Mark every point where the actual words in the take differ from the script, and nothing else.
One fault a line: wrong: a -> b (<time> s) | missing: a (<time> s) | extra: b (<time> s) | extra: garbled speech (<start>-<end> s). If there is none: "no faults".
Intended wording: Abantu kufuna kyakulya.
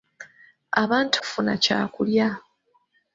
no faults